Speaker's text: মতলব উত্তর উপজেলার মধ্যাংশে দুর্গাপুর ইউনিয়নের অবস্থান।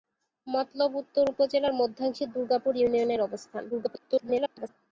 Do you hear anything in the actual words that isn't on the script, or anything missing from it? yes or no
yes